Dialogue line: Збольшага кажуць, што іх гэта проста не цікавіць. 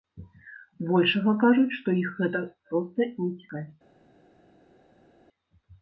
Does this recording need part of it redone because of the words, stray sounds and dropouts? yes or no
no